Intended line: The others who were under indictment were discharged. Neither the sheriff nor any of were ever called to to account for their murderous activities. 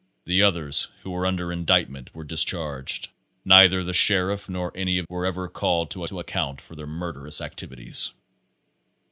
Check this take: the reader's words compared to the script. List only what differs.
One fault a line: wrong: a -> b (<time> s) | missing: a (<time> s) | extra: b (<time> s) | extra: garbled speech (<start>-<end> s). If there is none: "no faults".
no faults